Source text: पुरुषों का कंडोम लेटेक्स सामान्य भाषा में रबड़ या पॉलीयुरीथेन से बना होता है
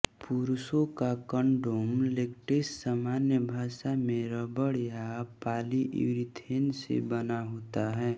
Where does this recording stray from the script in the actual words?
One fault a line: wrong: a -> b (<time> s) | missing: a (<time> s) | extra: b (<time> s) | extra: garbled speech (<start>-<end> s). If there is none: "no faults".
no faults